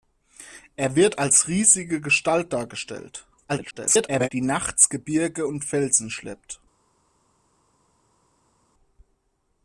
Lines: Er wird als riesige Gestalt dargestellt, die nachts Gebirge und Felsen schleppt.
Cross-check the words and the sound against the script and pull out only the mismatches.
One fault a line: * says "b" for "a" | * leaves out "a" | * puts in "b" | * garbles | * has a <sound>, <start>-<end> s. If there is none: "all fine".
* garbles